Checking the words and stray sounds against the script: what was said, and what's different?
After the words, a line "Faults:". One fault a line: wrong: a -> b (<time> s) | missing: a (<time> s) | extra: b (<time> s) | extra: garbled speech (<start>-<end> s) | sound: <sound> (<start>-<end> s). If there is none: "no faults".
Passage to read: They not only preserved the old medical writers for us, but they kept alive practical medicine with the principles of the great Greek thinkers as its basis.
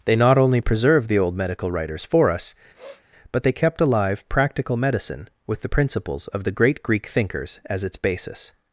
They not only preserved the old medical writers for us, but they kept alive practical medicine with the principles of the great Greek thinkers as its basis.
Faults:
sound: sniff (2.7-3.0 s)